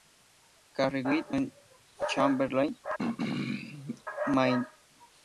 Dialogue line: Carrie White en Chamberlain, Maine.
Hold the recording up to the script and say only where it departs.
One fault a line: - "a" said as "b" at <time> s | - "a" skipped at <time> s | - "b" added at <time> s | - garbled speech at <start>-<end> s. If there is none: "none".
none